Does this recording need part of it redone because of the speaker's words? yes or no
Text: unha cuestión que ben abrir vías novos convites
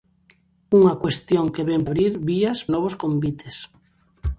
no